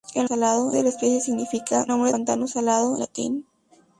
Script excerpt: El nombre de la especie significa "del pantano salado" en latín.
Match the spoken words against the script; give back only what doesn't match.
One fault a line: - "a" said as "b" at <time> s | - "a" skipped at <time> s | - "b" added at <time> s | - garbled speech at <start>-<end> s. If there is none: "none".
- "nombre" said as "salado" at 0.2 s
- "del" said as "nombre" at 1.9 s
- "en" skipped at 3.0 s